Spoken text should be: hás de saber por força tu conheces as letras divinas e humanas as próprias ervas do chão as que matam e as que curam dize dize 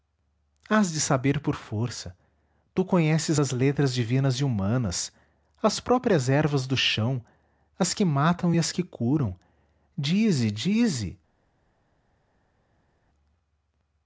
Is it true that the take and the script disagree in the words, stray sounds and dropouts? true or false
false